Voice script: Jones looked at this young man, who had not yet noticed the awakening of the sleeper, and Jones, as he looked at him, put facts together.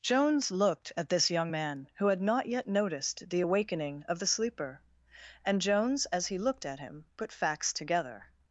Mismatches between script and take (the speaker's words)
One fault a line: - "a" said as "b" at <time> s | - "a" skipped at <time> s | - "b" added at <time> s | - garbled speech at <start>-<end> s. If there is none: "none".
none